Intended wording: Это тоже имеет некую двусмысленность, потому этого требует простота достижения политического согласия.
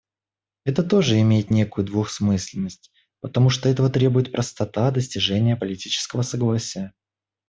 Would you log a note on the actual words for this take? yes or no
yes